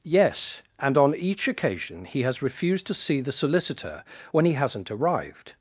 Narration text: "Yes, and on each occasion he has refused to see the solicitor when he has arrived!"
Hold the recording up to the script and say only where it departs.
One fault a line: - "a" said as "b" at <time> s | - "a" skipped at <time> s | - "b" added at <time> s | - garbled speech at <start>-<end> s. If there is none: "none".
- "has" said as "hasn't" at 4.5 s